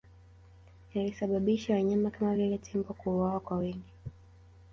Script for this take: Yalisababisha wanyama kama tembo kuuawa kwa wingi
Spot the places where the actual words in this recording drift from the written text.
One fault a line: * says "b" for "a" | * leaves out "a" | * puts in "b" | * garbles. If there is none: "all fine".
* puts in "vile"